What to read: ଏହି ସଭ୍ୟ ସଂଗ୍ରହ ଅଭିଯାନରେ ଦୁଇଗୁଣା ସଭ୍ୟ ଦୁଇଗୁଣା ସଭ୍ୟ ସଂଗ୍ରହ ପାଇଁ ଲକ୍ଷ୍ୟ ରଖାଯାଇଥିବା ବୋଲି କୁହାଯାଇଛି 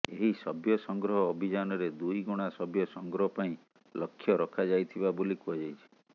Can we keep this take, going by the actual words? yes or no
no